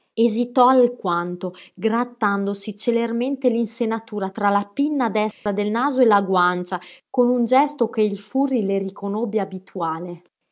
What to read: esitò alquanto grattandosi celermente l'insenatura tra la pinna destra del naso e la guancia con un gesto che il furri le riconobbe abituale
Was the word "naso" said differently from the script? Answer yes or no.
no